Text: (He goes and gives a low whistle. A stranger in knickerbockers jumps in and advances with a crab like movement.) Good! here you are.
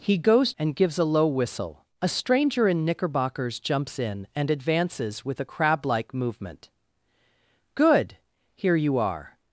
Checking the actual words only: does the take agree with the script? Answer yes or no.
yes